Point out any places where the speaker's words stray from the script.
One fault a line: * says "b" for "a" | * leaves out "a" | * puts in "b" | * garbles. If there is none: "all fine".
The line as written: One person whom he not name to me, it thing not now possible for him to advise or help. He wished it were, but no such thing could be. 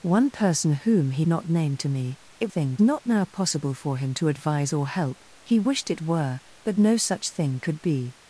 all fine